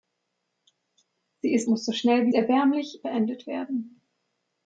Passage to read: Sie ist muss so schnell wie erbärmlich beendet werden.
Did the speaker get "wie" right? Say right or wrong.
right